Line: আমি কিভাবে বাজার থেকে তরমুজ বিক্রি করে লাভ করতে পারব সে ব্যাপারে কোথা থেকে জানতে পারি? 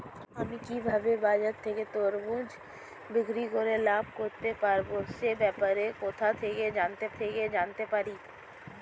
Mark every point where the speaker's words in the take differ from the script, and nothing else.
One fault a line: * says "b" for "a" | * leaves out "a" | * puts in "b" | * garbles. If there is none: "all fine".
* puts in "থেকে জানতে"